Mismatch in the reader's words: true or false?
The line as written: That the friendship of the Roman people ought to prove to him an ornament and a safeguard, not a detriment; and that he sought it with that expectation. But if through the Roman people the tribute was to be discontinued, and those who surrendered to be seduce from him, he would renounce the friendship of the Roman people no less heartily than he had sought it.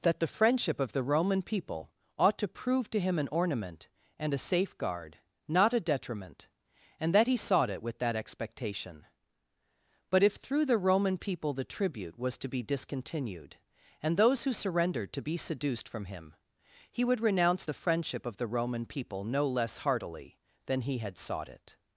true